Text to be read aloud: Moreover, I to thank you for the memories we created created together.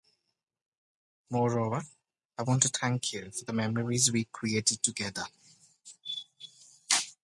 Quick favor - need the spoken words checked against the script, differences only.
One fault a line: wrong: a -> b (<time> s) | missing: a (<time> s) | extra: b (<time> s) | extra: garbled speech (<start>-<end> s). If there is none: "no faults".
extra: want (2.4 s)
missing: created (4.8 s)